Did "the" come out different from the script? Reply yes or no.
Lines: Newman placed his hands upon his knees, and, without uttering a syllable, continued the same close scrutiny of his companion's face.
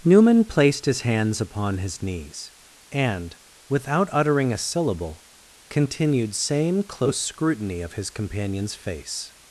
yes